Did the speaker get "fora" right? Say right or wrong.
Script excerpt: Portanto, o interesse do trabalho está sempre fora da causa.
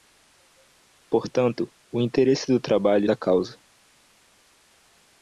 wrong